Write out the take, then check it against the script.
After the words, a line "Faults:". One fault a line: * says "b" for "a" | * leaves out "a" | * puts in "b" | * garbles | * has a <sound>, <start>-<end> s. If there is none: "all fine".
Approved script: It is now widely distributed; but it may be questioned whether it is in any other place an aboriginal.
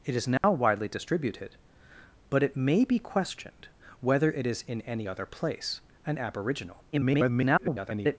It is now widely distributed; but it may be questioned whether it is in any other place an aboriginal. [garbled]
Faults:
* has a dropout, 0.4-0.4 s
* garbles